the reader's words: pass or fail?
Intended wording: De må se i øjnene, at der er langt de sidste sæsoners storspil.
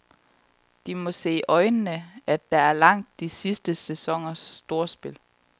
pass